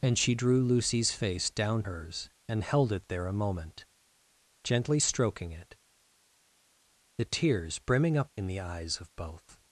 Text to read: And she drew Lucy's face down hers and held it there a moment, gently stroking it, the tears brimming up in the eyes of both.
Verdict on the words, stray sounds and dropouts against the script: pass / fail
pass